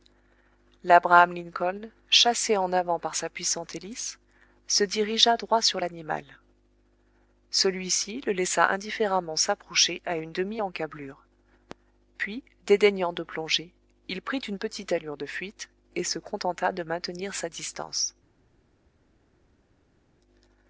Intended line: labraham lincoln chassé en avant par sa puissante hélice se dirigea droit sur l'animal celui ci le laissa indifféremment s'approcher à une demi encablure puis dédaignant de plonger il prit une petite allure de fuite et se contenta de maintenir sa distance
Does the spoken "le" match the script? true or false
true